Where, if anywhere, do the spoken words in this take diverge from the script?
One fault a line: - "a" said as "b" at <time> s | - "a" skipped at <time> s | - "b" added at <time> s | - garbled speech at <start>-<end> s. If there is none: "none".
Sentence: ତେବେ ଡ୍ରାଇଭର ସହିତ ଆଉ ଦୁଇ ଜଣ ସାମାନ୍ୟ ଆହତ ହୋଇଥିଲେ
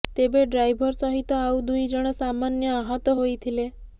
none